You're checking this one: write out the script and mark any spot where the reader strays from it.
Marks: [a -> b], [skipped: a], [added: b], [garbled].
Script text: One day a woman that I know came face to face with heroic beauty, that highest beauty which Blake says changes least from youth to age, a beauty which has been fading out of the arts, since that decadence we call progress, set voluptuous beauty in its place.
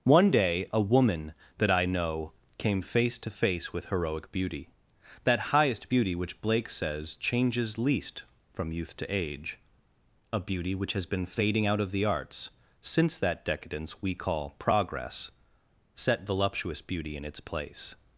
One day a woman that I know came face to face with heroic beauty, that highest beauty which Blake says changes least from youth to age, a beauty which has been fading out of the arts, since that decadence we call progress, set voluptuous beauty in its place.